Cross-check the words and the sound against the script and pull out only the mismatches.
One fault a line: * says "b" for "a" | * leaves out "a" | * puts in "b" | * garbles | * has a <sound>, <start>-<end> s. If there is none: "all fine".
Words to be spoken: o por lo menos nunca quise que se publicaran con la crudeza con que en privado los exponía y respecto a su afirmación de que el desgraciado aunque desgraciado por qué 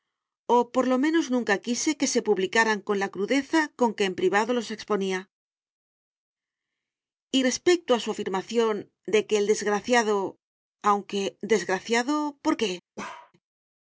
* has a bark, 13.0-13.3 s